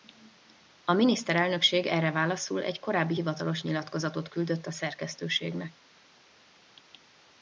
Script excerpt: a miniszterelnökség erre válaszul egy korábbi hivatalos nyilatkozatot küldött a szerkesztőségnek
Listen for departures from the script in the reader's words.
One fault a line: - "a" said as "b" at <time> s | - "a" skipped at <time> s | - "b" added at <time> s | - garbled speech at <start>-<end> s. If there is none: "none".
none